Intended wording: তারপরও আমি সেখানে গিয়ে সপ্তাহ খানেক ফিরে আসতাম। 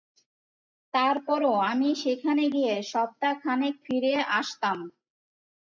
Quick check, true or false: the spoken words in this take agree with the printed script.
true